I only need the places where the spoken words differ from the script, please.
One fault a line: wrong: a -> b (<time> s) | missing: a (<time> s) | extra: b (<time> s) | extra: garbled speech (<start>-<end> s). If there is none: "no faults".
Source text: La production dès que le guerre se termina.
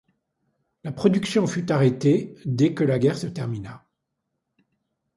extra: fut arrêtée (1.4 s)
wrong: le -> la (2.8 s)